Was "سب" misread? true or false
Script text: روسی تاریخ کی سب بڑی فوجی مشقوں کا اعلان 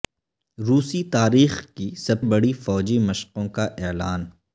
false